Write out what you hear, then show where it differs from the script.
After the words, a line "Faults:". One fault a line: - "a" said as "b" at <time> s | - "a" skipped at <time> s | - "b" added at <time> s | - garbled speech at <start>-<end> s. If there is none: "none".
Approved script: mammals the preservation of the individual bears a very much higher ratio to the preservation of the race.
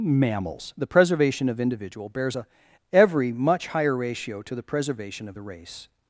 mammals the preservation of individual bears a every much higher ratio to the preservation of the race.
Faults:
- "the" skipped at 1.6 s
- "very" said as "every" at 2.9 s